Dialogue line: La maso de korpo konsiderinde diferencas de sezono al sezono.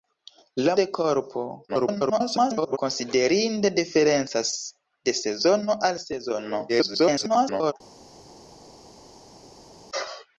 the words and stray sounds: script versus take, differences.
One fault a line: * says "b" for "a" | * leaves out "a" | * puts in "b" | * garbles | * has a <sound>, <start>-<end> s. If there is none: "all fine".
* leaves out "maso"
* garbles
* garbles